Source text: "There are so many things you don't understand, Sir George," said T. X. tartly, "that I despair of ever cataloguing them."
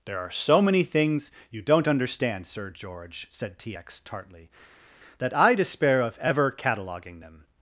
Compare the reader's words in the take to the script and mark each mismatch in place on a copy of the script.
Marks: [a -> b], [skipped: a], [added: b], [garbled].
"There are so many things you don't understand, Sir George," said T. X. tartly, "that I despair of ever cataloguing them."